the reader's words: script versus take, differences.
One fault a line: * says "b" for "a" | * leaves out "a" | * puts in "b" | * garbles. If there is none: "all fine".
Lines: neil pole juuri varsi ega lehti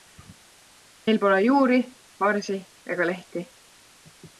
all fine